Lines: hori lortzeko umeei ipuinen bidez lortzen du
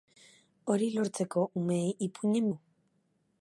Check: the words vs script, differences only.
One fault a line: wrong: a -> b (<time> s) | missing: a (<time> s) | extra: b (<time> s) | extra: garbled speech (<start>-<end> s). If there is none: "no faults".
missing: bidez lortzen (2.5 s)